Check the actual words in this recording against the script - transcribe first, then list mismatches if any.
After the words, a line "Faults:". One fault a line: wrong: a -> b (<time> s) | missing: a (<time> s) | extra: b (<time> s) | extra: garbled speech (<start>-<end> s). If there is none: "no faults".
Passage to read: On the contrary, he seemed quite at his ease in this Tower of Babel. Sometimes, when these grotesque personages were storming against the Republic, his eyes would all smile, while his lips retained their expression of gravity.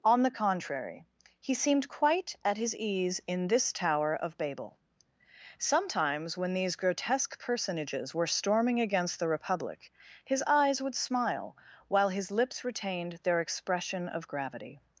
On the contrary, he seemed quite at his ease in this Tower of Babel. Sometimes, when these grotesque personages were storming against the Republic, his eyes would smile, while his lips retained their expression of gravity.
Faults:
missing: all (10.9 s)